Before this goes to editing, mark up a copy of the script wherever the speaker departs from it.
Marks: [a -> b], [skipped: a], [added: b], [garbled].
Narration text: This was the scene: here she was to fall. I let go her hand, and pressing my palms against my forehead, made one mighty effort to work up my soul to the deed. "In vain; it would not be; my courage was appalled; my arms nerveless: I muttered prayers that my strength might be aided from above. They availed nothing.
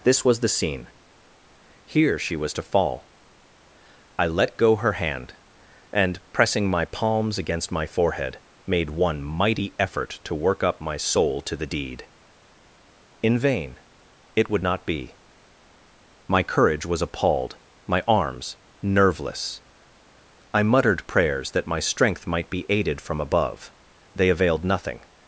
This was the scene: here she was to fall. I let go her hand, and pressing my palms against my forehead, made one mighty effort to work up my soul to the deed. "In vain; it would not be; my courage was appalled; my arms nerveless: I muttered prayers that my strength might be aided from above. They availed nothing.